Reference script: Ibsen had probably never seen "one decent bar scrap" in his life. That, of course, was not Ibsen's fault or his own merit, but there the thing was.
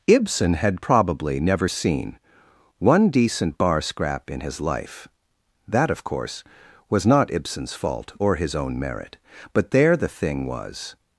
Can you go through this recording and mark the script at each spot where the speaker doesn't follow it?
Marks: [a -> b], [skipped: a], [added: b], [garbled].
Ibsen had probably never seen "one decent bar scrap" in his life. That, of course, was not Ibsen's fault or his own merit, but there the thing was.